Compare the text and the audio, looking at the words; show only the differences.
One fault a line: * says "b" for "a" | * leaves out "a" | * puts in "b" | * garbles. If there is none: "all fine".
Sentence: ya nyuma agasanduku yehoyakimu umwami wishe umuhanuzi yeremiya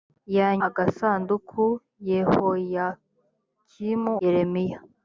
* leaves out "nyuma"
* leaves out "umwami wishe umuhanuzi"